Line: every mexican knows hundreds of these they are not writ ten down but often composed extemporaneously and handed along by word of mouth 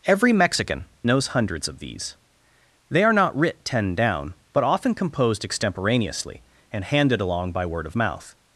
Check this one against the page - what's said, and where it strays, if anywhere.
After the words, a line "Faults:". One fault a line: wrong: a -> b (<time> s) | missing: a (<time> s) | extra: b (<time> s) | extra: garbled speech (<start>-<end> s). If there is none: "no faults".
every mexican knows hundreds of these they are not writ ten down but often composed extemporaneously and handed along by word of mouth
Faults:
no faults